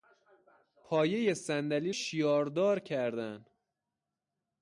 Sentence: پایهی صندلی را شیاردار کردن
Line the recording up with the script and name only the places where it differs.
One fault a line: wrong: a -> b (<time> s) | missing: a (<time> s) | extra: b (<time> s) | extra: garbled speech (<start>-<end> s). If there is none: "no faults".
missing: را (1.9 s)